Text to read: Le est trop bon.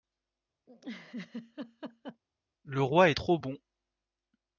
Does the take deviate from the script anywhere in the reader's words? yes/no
yes